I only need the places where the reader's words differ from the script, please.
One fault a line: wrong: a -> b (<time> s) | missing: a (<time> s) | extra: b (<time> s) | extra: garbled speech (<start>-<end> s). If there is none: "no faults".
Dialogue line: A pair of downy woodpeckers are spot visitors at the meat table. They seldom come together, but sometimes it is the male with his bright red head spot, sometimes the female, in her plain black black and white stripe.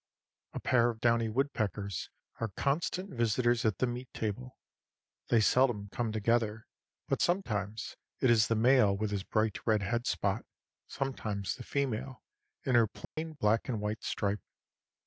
wrong: spot -> constant (2.5 s)
missing: black (13.7 s)